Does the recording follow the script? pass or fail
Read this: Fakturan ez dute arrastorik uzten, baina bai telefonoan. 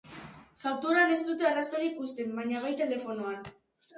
pass